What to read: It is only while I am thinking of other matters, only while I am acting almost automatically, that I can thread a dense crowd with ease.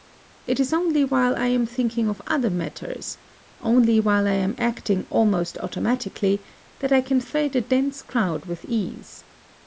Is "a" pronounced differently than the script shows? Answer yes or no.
no